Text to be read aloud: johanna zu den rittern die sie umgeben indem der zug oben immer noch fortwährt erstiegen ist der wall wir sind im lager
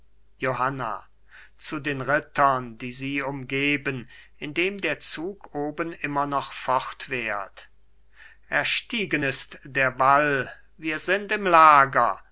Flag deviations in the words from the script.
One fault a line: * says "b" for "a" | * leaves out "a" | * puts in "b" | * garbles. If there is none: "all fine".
all fine